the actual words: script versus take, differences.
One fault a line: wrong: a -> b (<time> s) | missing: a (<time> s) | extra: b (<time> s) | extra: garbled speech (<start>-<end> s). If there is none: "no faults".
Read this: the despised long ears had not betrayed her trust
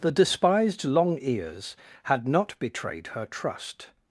no faults